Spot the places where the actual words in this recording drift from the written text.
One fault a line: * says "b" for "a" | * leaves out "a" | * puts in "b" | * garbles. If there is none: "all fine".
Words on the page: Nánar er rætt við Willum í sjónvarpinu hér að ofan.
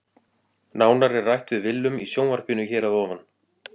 all fine